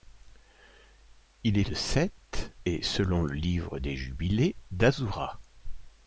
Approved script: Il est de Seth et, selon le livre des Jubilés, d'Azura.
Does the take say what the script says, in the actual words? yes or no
yes